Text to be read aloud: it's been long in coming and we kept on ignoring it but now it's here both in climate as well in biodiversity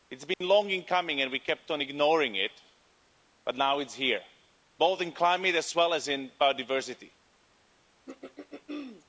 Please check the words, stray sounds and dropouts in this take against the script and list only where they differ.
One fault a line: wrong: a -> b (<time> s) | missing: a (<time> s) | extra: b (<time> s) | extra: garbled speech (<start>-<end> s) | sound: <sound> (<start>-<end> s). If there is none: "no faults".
sound: dropout (0.3-0.4 s)
extra: as (5.9 s)
sound: throat clearing (8.1-9.1 s)